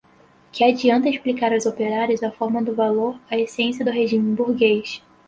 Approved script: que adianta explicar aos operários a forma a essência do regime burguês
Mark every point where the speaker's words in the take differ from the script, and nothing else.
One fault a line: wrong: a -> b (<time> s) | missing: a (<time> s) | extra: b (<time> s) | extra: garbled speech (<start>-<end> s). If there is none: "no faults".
extra: do valor (2.6 s)